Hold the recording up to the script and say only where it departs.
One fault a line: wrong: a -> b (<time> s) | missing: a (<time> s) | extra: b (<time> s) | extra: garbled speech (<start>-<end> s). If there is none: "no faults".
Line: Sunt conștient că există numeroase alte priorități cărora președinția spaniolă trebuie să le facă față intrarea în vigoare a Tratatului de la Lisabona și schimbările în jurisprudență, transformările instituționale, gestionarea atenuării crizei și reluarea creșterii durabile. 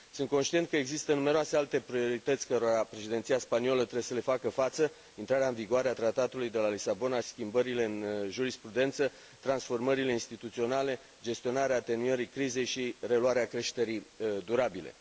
missing: și (7.2 s)